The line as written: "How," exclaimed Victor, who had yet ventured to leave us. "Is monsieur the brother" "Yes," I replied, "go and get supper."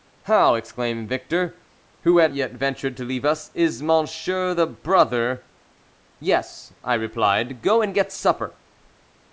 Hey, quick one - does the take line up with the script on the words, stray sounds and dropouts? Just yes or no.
yes